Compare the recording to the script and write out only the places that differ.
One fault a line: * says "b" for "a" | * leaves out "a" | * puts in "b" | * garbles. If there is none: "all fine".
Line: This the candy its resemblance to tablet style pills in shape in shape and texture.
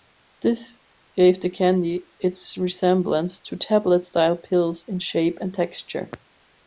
* puts in "gave"
* leaves out "in shape"